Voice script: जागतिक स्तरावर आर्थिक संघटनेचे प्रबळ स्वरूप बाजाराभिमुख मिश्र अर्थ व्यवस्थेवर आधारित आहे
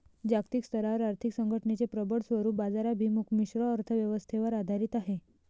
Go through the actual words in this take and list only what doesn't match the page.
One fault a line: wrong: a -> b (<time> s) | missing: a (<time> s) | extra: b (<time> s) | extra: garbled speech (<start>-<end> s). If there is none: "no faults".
no faults